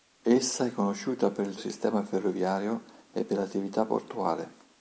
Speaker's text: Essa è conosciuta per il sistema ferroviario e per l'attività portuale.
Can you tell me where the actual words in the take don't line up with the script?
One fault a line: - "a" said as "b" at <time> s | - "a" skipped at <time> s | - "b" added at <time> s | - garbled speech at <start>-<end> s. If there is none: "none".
none